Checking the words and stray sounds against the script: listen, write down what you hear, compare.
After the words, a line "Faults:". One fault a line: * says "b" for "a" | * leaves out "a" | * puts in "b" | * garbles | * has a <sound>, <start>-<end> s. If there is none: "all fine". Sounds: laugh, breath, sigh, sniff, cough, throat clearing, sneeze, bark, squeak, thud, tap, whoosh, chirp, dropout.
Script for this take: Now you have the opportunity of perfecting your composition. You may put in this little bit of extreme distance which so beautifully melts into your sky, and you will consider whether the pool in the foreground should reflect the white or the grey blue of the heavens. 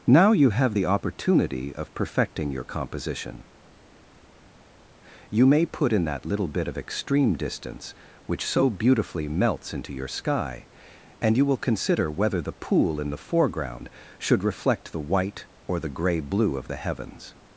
Now you have the opportunity of perfecting your composition. You may put in that little bit of extreme distance which so beautifully melts into your sky, and you will consider whether the pool in the foreground should reflect the white or the grey blue of the heavens.
Faults:
* says "that" for "this"